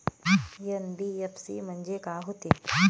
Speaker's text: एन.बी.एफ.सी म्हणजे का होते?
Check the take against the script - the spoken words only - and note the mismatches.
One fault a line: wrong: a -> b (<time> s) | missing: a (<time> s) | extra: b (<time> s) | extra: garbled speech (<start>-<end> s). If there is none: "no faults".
no faults